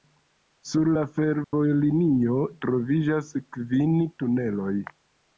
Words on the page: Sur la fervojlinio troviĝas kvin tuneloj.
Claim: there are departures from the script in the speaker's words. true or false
false